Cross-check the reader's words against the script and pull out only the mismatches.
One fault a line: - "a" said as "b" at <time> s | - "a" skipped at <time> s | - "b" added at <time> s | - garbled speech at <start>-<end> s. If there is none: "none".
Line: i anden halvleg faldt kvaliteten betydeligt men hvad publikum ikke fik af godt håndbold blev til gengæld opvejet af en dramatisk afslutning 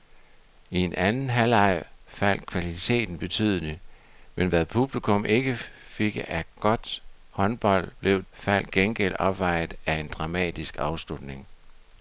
- "til" said as "faldt" at 8.3 s